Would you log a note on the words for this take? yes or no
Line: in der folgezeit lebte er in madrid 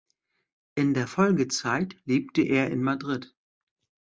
no